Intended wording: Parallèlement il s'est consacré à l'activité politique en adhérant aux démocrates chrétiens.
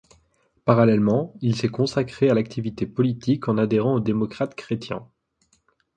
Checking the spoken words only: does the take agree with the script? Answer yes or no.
yes